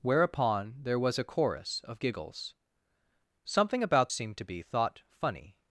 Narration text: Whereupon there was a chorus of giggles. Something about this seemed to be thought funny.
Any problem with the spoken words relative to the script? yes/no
yes